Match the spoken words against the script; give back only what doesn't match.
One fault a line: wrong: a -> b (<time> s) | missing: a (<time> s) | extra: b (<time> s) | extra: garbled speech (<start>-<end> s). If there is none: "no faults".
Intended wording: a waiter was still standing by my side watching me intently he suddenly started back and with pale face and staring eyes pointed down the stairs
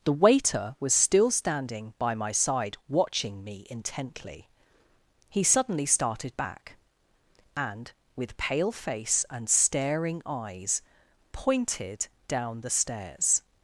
wrong: a -> the (0.0 s)